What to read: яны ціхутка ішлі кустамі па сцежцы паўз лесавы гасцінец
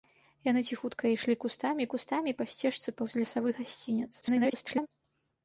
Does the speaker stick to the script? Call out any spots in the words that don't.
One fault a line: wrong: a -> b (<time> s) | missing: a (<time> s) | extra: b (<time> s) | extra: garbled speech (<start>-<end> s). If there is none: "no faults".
extra: кустамі (1.9 s)
extra: garbled speech (4.2-4.9 s)